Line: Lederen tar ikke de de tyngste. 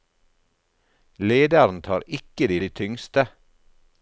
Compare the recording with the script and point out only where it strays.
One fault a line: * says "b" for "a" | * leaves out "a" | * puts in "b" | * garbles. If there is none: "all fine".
all fine